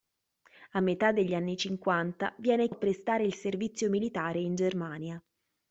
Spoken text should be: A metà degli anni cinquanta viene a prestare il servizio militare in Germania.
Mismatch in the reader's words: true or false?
false